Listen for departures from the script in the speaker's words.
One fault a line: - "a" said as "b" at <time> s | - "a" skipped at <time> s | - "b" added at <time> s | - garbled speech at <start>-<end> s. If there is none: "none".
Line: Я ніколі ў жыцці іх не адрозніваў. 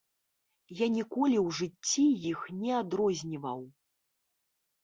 none